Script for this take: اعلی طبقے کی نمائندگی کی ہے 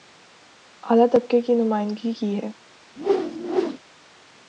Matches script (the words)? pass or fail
pass